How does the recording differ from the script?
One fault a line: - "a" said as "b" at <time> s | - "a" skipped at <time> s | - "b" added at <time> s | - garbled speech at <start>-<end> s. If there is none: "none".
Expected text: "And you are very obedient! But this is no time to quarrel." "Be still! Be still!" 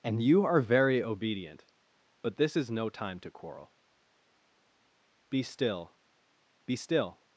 none